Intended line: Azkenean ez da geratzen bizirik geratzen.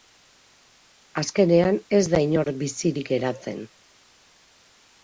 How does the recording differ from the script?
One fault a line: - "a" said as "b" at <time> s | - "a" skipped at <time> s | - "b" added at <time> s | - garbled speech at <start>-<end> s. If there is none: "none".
- "geratzen" said as "inor" at 2.3 s